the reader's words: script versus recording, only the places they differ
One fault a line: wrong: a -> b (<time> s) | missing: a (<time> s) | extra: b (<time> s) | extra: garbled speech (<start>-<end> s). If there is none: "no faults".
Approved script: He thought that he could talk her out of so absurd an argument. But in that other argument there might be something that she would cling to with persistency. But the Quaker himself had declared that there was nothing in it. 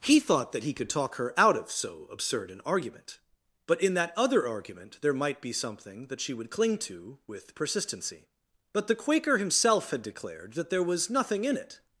no faults